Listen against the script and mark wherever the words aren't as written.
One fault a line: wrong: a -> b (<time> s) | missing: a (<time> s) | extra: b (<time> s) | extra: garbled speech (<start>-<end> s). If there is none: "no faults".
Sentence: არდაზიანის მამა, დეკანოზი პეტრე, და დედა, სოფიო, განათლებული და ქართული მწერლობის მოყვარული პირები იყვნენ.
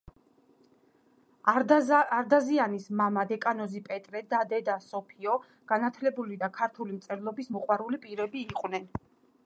no faults